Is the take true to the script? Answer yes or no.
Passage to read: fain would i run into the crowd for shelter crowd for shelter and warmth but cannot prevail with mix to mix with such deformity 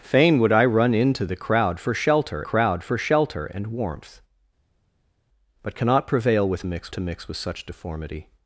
yes